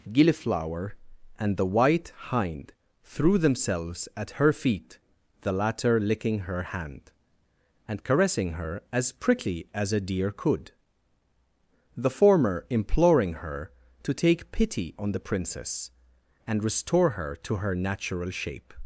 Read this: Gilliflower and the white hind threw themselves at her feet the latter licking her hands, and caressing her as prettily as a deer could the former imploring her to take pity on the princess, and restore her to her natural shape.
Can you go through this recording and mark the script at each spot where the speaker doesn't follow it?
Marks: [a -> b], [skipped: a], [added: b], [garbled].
Gilliflower and the white hind threw themselves at her feet the latter licking her [hands, -> hand] and caressing her as prettily as a deer could the former imploring her to take pity on the princess, and restore her to her natural shape.